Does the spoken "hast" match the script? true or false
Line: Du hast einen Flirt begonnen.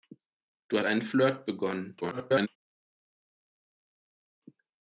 false